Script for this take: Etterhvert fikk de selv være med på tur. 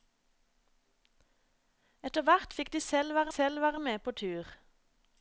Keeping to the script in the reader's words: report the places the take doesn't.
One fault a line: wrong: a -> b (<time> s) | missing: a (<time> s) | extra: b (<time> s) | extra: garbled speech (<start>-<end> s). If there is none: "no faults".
extra: selv være (3.3 s)